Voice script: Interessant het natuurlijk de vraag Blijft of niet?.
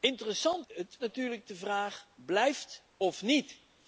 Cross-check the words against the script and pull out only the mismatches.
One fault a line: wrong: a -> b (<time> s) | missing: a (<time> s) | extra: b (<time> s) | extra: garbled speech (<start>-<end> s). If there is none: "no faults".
no faults